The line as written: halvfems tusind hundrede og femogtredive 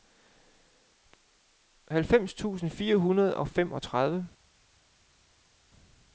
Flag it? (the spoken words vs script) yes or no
yes